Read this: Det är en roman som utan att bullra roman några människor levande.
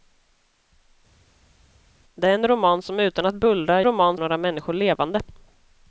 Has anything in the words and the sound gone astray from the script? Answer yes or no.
no